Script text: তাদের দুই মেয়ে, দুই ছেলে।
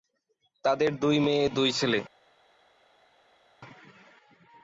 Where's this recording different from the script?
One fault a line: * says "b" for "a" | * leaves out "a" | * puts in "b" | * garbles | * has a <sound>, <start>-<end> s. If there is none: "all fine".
all fine